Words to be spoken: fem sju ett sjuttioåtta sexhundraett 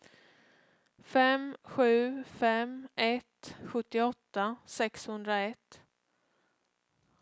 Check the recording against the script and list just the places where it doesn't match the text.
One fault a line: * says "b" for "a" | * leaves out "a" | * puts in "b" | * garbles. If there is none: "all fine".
* puts in "fem"